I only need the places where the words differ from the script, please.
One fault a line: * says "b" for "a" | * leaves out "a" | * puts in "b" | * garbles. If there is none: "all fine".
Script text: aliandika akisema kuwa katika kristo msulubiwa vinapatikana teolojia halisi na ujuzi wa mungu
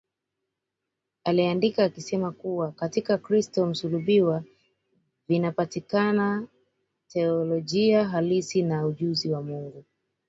all fine